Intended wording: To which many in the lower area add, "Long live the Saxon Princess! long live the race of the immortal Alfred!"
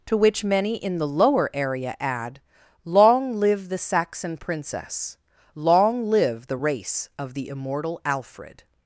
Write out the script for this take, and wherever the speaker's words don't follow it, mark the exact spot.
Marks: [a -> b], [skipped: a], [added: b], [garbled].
To which many in the lower area add, "Long live the Saxon Princess! long live the race of the immortal Alfred!"